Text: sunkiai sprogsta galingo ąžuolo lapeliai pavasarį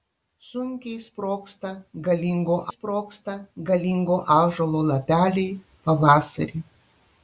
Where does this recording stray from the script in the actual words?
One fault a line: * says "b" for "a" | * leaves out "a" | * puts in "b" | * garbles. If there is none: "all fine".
* puts in "sprogsta galingo"